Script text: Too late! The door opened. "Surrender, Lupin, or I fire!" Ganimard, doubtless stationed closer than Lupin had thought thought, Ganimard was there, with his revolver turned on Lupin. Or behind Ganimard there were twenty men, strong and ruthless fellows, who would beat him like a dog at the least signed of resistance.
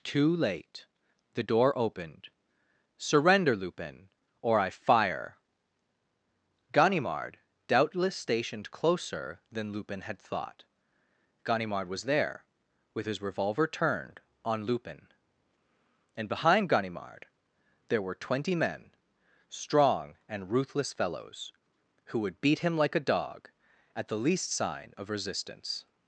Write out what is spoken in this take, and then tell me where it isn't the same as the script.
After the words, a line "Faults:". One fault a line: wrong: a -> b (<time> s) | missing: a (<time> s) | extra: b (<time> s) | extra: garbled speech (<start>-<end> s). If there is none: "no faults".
Too late! The door opened. "Surrender, Lupin, or I fire!" Ganimard, doubtless stationed closer than Lupin had thought, Ganimard was there, with his revolver turned on Lupin. And behind Ganimard there were twenty men, strong and ruthless fellows, who would beat him like a dog at the least sign of resistance.
Faults:
missing: thought (10.6 s)
wrong: Or -> And (16.1 s)
wrong: signed -> sign (24.5 s)